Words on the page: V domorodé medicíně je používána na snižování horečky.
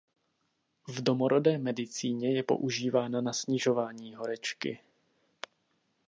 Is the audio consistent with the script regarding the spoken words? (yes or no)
yes